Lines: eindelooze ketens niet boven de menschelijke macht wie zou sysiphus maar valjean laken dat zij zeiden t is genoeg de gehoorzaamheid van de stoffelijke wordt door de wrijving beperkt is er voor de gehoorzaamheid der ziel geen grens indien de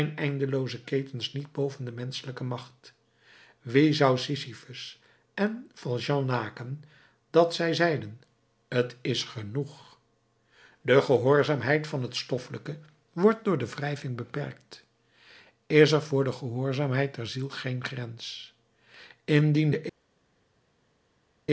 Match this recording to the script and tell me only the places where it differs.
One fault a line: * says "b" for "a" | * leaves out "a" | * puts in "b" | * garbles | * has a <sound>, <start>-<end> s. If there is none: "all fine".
* says "en" for "maar"
* says "het" for "de"